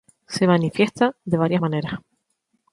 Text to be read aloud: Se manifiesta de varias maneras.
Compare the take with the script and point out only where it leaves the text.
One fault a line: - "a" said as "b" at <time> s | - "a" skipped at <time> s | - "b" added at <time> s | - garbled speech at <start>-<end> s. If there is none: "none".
none